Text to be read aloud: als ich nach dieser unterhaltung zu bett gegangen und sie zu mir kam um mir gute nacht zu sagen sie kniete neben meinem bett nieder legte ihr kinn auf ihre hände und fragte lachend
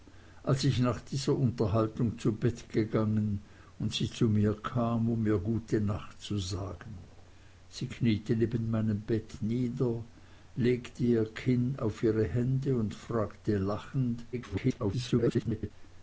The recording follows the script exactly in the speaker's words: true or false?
false